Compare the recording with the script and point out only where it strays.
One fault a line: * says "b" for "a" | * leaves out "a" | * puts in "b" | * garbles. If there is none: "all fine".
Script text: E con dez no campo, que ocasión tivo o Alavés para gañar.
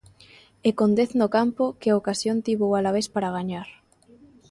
all fine